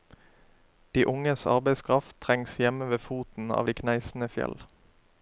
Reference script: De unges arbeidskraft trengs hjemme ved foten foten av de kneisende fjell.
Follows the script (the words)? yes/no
no